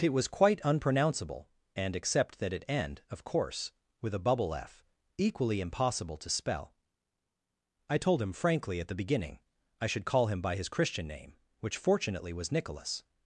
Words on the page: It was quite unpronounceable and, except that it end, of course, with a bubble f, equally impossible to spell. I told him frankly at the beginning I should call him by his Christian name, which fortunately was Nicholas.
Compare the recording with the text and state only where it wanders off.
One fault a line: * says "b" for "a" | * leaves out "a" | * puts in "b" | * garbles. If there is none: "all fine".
all fine